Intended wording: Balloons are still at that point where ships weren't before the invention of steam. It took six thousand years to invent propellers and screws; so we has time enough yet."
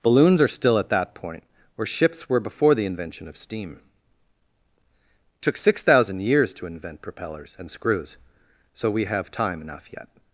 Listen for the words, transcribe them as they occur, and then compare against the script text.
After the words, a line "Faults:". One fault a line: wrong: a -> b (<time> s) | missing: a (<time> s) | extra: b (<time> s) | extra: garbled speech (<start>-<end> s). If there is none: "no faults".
Balloons are still at that point where ships were before the invention of steam. It took six thousand years to invent propellers and screws; so we have time enough yet."
Faults:
wrong: weren't -> were (2.3 s)
wrong: has -> have (9.1 s)